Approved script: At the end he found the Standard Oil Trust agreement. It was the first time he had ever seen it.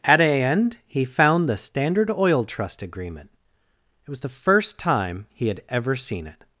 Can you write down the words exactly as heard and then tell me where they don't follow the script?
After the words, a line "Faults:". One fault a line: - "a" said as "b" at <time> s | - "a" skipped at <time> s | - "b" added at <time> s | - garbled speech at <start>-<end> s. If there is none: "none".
At a end he found the Standard Oil Trust agreement. It was the first time he had ever seen it.
Faults:
- "the" said as "a" at 0.2 s